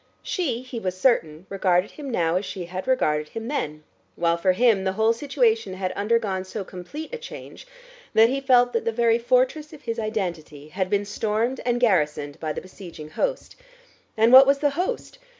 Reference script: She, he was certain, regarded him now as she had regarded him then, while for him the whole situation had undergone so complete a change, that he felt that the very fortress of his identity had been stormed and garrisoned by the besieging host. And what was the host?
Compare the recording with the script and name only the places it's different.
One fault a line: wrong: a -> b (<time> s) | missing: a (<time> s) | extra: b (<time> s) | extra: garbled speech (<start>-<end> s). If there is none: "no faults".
no faults